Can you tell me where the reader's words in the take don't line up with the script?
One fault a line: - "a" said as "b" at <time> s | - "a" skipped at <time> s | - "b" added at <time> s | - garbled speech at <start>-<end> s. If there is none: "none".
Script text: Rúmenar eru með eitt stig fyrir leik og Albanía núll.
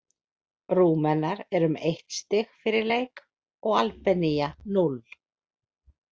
none